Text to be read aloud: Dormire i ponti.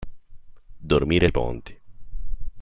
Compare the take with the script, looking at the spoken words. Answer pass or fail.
pass